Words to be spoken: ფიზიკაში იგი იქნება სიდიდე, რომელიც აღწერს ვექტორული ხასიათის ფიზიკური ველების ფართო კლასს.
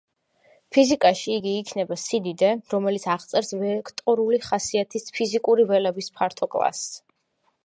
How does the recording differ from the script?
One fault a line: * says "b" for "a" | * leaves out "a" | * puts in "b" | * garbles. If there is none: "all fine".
all fine